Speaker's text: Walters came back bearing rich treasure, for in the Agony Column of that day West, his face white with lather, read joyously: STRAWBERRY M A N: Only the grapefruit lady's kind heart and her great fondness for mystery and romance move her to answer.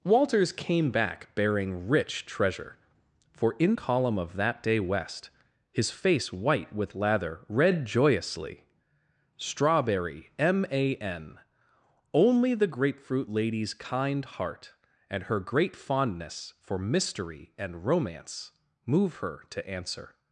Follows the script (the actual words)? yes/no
no